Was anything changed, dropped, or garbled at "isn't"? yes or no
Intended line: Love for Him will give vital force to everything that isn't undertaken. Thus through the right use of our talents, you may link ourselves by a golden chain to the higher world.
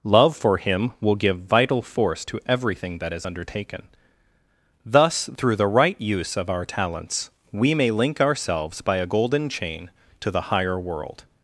yes